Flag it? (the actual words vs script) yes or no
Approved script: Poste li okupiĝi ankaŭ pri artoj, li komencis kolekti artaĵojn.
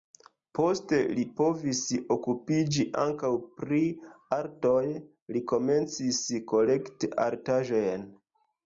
yes